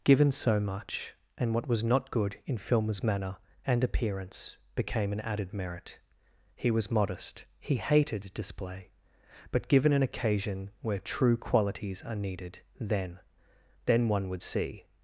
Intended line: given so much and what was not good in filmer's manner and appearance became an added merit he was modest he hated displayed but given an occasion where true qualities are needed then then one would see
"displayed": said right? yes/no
no